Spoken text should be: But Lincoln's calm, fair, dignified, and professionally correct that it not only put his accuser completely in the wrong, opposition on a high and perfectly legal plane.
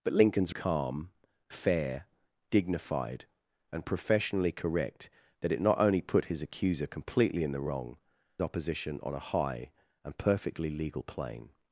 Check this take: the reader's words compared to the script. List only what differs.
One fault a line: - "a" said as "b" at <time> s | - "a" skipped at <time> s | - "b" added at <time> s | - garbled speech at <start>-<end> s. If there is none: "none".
none